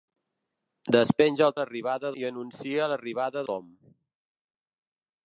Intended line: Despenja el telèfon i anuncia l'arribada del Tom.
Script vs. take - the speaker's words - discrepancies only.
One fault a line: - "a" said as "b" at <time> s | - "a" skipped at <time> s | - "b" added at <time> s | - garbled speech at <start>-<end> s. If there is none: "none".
- "telèfon" said as "l'arribada" at 1.6 s
- "del" skipped at 3.5 s